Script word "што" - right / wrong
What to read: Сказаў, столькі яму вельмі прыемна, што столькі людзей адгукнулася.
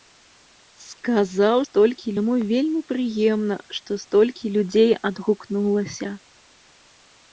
right